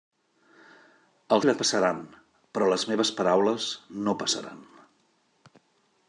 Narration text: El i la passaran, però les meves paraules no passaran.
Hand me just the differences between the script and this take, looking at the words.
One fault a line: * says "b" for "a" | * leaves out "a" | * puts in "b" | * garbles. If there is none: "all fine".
all fine